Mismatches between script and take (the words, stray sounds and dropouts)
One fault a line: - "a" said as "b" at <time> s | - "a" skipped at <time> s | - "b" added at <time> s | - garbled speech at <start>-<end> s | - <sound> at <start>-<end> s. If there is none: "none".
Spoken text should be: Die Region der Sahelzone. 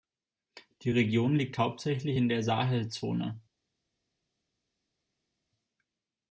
- "liegt hauptsächlich in" added at 1.4 s